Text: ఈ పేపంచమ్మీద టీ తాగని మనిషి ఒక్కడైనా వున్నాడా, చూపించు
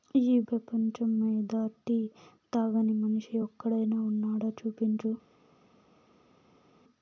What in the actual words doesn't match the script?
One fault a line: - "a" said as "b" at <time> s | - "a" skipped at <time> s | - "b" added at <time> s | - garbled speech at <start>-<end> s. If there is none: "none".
none